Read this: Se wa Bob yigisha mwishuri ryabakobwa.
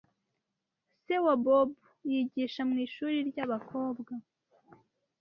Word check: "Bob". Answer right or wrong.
right